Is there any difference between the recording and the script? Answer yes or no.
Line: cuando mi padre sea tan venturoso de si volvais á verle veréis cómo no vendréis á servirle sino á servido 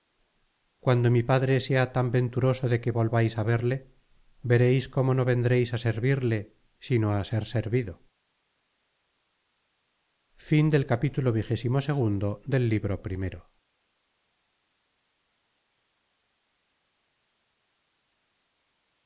yes